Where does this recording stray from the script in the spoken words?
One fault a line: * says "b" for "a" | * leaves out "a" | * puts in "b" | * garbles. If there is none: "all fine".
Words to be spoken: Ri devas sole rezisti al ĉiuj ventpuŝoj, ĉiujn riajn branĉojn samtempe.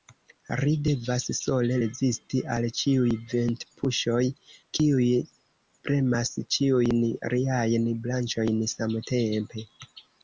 * puts in "kiuj premas"